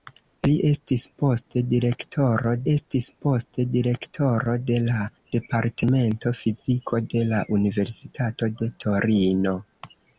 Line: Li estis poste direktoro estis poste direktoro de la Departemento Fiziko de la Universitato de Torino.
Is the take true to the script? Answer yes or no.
yes